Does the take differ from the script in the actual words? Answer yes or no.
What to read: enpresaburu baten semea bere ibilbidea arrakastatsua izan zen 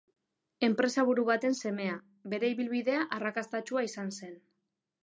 no